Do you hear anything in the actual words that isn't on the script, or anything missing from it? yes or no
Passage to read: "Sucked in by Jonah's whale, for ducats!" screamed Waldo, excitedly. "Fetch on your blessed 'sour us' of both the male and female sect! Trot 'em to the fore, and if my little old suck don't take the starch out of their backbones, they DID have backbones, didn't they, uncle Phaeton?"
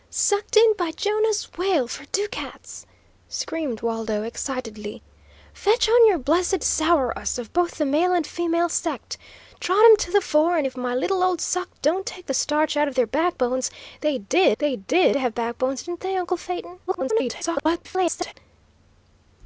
yes